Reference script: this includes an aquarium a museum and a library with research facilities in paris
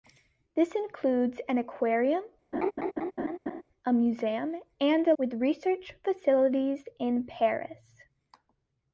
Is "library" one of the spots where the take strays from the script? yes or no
yes